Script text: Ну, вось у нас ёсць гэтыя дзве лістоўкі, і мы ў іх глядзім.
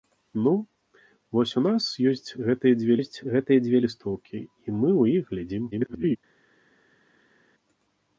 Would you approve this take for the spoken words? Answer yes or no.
no